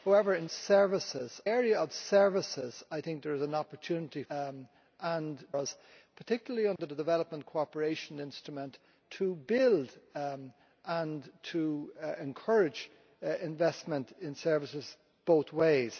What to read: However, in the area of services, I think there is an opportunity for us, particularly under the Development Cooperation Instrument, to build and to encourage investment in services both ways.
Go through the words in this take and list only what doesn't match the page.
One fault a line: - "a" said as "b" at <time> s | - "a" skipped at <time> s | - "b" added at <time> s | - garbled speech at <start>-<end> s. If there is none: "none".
- "the" said as "services" at 0.5 s
- "for" said as "and" at 4.3 s